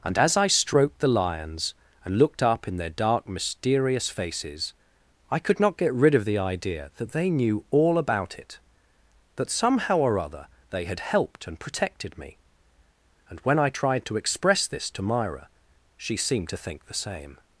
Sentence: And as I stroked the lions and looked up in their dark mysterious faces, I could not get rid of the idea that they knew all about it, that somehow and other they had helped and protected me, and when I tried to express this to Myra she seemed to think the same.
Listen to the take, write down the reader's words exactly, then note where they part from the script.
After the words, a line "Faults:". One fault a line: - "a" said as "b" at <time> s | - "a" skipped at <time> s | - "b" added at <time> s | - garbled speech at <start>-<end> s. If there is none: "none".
And as I stroked the lions and looked up in their dark mysterious faces, I could not get rid of the idea that they knew all about it, that somehow or other they had helped and protected me, and when I tried to express this to Myra she seemed to think the same.
Faults:
- "and" said as "or" at 10.0 s